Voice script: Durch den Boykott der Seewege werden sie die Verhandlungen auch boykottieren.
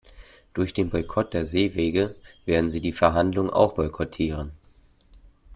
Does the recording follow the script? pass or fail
pass